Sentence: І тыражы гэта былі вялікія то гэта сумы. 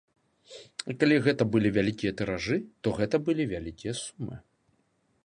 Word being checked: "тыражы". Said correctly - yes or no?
no